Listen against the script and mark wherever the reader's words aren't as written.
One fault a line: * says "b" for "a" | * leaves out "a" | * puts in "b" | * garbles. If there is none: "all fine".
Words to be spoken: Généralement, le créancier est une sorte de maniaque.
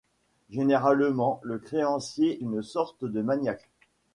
* leaves out "est"